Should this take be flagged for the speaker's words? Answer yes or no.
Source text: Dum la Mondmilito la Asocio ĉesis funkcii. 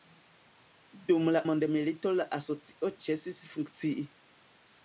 no